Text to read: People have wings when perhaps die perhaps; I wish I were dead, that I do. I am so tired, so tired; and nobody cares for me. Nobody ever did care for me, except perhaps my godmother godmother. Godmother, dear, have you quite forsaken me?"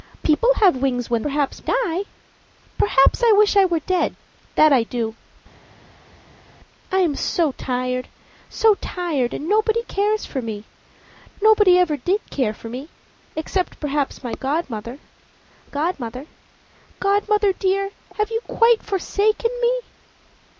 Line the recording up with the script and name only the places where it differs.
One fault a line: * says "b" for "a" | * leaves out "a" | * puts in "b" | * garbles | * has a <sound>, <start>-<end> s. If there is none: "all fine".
all fine